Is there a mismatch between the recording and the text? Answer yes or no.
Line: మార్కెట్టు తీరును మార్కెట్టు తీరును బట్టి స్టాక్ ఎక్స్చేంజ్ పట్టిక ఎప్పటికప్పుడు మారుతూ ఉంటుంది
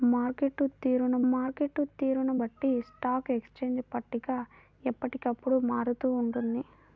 no